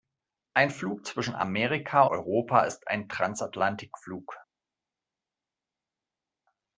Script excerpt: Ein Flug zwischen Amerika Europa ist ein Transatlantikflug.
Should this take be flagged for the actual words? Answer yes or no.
no